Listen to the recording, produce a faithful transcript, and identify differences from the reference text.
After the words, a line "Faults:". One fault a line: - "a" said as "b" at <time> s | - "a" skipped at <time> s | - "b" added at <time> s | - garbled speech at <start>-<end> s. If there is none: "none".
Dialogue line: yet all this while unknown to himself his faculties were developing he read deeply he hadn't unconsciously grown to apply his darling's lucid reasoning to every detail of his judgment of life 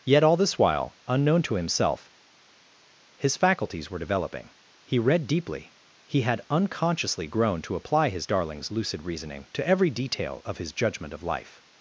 yet all this while unknown to himself his faculties were developing he read deeply he had unconsciously grown to apply his darling's lucid reasoning to every detail of his judgment of life
Faults:
- "hadn't" said as "had" at 6.2 s